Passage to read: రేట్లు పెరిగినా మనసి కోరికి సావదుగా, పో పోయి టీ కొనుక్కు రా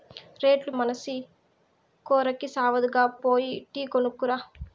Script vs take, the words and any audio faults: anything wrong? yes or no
yes